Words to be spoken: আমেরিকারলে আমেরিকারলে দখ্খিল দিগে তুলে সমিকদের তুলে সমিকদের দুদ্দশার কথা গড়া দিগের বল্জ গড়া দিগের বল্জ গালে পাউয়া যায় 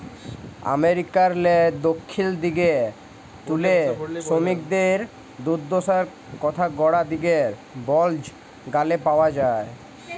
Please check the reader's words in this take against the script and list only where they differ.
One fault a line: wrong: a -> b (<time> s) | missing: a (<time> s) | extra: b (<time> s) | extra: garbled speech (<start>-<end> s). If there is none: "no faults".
missing: আমেরিকারলে (1.6 s)
missing: তুলে সমিকদের (5.0 s)
missing: গড়া দিগের বল্জ (8.2 s)